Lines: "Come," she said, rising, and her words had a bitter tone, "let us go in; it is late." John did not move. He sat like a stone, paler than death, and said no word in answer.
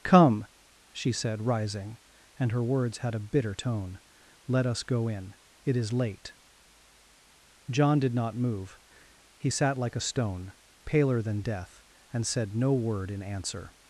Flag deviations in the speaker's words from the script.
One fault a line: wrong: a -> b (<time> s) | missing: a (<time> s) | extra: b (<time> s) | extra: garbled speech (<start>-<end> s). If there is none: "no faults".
no faults